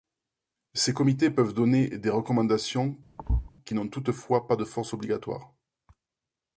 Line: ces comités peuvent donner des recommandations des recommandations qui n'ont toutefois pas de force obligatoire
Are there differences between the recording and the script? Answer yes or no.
yes